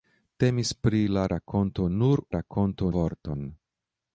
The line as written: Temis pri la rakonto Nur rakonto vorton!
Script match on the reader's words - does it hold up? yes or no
yes